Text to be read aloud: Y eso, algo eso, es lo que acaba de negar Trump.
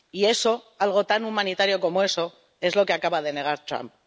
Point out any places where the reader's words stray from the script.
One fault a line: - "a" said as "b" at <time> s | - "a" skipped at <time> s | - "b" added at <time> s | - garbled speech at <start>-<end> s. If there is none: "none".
- "tan humanitario como" added at 1.1 s